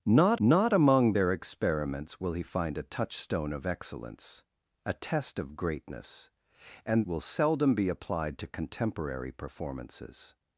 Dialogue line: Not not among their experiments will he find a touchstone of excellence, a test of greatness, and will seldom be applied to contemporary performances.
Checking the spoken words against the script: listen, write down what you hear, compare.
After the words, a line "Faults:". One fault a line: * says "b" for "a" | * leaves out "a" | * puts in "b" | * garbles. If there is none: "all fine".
Not not among their experiments will he find a touchstone of excellence, a test of greatness, and will seldom be applied to contemporary performances.
Faults:
all fine